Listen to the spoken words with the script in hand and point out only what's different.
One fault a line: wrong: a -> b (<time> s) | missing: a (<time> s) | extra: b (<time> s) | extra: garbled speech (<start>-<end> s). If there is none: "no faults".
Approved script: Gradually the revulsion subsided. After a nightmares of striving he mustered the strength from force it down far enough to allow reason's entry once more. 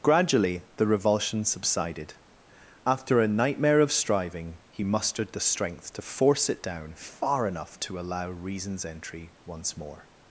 wrong: nightmares -> nightmare (3.3 s)
wrong: from -> to (5.9 s)